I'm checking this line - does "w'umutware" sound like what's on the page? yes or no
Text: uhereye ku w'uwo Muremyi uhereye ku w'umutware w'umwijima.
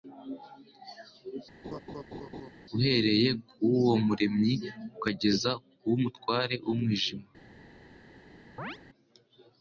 yes